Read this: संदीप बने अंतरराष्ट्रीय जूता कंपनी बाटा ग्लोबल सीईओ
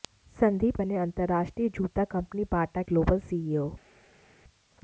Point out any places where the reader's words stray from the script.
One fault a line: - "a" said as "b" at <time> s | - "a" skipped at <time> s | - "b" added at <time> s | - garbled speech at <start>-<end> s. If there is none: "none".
none